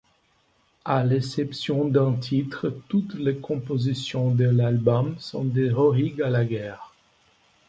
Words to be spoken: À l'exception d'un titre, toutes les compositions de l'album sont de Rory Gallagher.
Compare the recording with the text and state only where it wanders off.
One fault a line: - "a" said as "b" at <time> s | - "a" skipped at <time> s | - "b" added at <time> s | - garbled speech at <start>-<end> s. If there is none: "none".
none